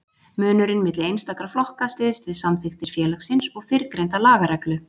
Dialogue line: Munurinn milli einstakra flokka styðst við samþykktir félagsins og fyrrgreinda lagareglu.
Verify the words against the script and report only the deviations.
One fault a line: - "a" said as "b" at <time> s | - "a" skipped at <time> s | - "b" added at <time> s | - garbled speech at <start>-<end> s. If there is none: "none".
none